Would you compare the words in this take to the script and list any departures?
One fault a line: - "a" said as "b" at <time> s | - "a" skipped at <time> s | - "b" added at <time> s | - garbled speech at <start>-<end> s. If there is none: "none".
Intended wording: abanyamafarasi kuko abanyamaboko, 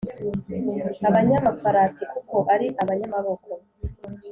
- "ari" added at 2.5 s